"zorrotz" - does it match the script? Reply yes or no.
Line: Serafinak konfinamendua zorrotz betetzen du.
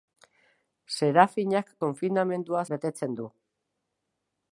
no